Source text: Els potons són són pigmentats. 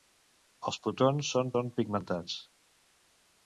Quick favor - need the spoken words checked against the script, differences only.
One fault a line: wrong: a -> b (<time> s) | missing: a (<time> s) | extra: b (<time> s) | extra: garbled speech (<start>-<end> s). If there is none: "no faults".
no faults